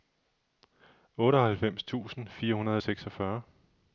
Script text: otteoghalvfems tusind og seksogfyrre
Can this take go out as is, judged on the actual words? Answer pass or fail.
fail